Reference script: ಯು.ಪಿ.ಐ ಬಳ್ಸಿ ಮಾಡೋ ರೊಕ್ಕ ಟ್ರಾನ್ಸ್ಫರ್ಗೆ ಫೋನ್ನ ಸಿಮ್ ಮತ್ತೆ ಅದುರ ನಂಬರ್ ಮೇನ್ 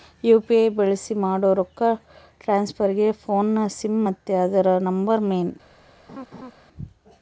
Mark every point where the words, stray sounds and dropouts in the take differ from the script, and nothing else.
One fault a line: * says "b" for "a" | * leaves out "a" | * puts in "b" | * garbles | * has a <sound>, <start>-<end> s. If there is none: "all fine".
* has a laugh, 6.1-6.5 s